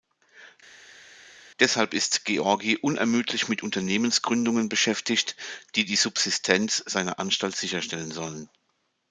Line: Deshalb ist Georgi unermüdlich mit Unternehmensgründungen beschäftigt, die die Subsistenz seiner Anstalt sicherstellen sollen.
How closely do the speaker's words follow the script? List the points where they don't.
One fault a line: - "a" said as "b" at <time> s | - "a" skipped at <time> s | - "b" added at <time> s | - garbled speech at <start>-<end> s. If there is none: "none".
none